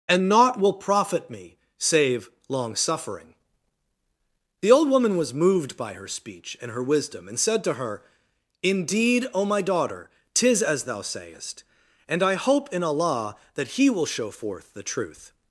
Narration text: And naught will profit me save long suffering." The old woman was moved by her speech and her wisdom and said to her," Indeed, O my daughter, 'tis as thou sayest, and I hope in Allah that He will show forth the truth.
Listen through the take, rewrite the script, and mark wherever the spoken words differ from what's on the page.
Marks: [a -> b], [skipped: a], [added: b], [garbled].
And naught will profit me save long suffering." The old woman was moved by her speech and her wisdom and said to her," Indeed, O my daughter, 'tis as thou sayest, and I hope in Allah that He will show forth the truth.